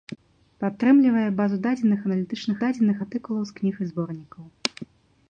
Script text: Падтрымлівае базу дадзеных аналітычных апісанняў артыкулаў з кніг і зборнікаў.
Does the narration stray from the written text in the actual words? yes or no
yes